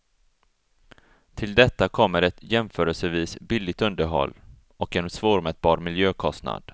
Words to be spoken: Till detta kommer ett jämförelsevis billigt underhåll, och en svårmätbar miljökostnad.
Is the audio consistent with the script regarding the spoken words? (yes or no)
yes